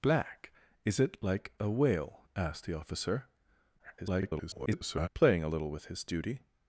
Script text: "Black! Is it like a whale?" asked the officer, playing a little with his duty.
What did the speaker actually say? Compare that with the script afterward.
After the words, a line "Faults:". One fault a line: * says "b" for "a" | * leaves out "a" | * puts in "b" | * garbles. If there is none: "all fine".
"Black! Is it like a whale?" asked the officer, [garbled] playing a little with his duty.
Faults:
* garbles